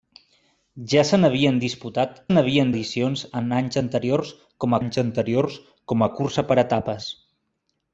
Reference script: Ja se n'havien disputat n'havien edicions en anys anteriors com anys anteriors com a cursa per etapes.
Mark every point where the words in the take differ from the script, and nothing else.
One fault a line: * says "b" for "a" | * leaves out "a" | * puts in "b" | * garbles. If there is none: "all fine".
all fine